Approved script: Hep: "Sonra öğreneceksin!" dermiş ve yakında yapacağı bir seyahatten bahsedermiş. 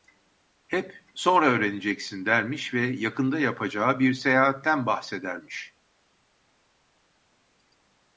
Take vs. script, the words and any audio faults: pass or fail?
pass